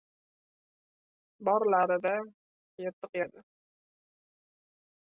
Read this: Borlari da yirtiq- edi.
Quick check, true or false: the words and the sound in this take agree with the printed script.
true